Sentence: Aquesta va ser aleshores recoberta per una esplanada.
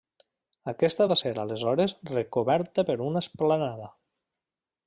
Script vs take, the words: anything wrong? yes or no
no